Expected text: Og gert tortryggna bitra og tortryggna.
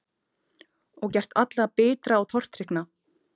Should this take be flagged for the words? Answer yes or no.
yes